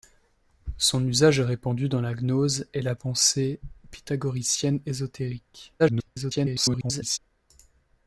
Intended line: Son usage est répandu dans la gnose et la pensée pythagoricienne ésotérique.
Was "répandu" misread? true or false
false